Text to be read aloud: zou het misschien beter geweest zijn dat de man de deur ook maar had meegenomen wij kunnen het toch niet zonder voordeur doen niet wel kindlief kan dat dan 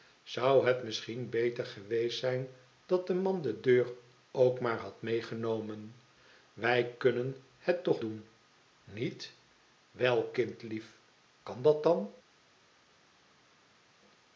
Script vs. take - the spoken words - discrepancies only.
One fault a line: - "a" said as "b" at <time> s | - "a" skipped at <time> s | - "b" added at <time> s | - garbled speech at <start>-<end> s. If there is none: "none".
- "niet zonder voordeur" skipped at 8.0 s